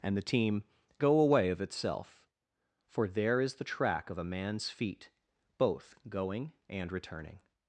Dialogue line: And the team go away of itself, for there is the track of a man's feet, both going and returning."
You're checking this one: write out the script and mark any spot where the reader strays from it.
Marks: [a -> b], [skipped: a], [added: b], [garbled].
And the team go away of itself, for there is the track of a man's feet, both going and returning."